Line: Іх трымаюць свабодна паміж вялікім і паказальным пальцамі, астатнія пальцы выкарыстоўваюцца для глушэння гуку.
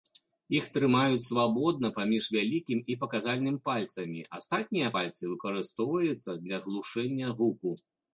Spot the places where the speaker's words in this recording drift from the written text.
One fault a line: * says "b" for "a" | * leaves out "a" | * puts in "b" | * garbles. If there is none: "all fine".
all fine